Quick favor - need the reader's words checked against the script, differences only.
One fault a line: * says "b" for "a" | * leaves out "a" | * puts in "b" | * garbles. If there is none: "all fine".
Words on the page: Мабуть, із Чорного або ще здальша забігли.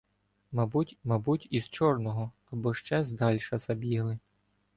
* puts in "мабуть"